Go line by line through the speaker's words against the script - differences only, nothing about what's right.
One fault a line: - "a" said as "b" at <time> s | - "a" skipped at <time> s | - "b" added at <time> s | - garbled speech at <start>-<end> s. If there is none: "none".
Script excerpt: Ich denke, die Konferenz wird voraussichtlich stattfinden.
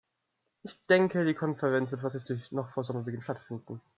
- "noch vor Sommerbeginn" added at 2.5 s